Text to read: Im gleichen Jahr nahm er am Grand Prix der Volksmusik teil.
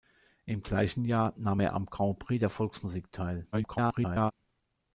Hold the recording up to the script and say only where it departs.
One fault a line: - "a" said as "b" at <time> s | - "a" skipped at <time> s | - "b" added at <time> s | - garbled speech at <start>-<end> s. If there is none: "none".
- garbled speech at 3.5-4.3 s